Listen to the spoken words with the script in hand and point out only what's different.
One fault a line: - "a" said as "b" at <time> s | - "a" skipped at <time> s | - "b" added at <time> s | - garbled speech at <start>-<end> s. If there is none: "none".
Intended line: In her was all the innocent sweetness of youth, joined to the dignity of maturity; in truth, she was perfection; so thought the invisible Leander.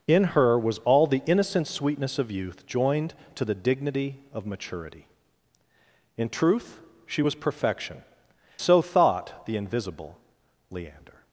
none